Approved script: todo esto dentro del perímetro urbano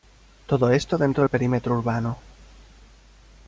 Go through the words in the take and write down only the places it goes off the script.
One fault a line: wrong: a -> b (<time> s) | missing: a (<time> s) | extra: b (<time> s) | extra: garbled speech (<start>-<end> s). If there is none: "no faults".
no faults